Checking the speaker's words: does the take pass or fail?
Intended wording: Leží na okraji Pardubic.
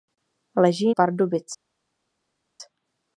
fail